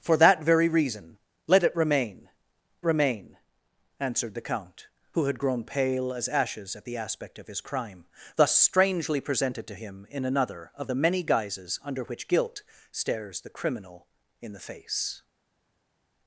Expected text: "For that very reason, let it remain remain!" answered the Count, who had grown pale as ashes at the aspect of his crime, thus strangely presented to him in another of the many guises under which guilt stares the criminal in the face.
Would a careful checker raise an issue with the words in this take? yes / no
no